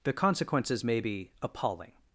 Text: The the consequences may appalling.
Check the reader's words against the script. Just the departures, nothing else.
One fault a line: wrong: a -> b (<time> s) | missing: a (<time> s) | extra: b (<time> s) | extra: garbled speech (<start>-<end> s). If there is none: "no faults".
missing: the (0.1 s)
extra: be (1.0 s)